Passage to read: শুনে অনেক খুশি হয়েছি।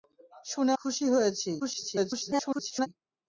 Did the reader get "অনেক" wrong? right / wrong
wrong